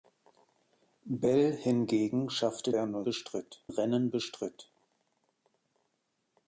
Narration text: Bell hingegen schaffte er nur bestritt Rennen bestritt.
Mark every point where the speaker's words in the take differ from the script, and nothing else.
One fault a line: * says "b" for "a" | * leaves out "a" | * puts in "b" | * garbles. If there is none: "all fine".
all fine